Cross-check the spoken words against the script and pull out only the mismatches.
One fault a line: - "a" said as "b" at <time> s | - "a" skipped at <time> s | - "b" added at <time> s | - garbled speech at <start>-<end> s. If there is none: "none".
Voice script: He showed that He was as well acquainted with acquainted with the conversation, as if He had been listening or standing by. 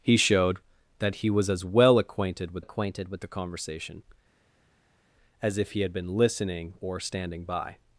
none